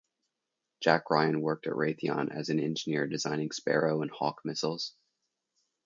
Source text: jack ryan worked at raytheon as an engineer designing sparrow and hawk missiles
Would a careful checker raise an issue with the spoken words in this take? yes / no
no